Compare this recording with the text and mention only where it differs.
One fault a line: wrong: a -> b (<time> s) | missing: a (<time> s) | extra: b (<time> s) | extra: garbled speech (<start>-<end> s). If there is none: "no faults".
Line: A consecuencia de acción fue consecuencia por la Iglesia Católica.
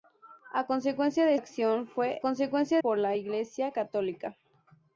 no faults